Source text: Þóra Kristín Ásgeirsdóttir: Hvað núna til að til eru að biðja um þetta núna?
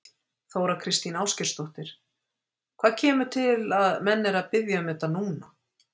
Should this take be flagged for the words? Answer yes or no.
yes